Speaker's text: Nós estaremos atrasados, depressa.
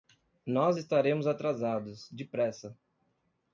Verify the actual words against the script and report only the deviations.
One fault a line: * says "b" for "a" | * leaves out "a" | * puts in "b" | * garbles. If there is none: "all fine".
all fine